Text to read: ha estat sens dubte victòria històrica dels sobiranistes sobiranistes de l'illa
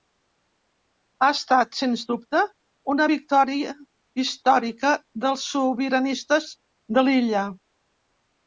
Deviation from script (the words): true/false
true